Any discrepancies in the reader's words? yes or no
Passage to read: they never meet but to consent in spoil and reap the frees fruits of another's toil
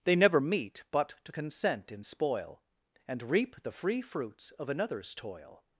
yes